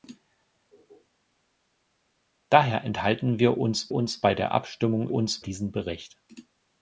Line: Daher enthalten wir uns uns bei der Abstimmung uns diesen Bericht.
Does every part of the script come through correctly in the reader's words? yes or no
yes